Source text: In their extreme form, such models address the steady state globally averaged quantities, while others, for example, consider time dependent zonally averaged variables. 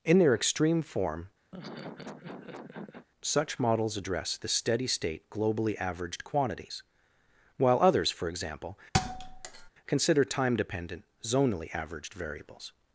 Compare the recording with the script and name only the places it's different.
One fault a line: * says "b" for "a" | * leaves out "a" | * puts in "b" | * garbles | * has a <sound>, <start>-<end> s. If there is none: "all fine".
* has a laugh, 1.5-3.1 s
* has a thud, 8.9-9.7 s